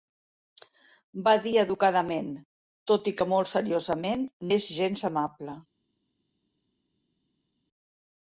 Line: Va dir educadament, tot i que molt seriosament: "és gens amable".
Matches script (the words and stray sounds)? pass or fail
pass